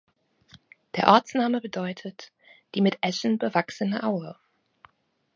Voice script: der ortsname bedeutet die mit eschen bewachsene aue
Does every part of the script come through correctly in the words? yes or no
yes